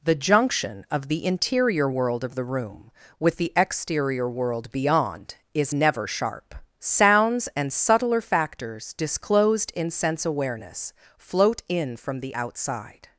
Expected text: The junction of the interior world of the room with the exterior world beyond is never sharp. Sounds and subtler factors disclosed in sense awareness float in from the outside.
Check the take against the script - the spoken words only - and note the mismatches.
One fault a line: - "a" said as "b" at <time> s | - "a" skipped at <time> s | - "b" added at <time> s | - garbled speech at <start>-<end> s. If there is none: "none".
none